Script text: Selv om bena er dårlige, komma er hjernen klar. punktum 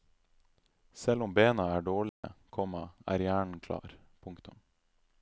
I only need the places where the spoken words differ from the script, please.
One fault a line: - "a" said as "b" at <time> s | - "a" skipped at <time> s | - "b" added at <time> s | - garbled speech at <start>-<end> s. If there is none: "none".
none